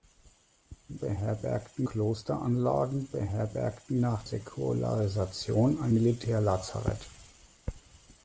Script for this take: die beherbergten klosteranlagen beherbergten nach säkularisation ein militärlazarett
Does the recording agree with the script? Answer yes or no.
yes